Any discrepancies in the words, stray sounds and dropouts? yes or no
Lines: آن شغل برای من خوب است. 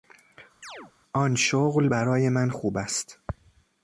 yes